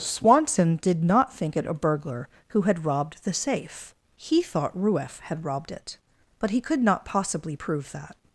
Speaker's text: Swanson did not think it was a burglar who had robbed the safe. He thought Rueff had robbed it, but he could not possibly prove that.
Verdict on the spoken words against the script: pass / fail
fail